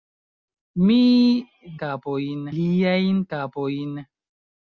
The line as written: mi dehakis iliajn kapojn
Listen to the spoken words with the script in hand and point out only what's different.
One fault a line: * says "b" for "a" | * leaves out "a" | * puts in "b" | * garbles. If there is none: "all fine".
* says "kapojn" for "dehakis"